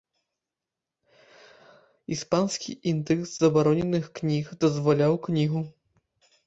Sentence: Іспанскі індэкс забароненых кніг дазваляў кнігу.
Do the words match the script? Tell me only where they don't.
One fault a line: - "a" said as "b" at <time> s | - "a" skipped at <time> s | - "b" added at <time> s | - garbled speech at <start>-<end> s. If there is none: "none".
none